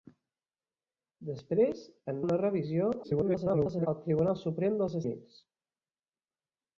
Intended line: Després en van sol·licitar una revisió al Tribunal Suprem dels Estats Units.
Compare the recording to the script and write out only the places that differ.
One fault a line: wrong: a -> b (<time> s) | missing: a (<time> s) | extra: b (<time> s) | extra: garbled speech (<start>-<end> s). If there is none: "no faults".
missing: van sol·licitar (2.2 s)
extra: garbled speech (3.0-3.9 s)
missing: Estats (5.0 s)